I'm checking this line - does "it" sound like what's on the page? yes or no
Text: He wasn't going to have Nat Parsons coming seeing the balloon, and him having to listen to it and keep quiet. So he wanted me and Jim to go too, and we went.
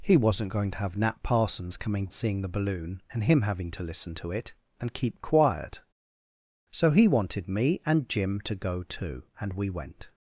yes